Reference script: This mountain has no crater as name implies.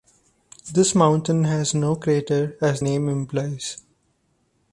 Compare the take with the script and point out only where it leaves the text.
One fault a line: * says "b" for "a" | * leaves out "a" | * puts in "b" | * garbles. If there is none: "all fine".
all fine